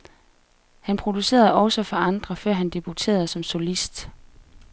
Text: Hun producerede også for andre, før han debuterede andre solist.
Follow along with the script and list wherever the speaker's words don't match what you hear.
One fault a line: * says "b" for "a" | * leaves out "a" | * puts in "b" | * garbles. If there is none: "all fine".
* says "Han" for "Hun"
* says "som" for "andre"